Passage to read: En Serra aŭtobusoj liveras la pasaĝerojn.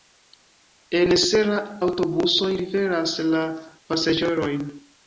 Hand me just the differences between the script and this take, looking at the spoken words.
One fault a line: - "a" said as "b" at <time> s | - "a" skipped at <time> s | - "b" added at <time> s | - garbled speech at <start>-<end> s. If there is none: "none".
none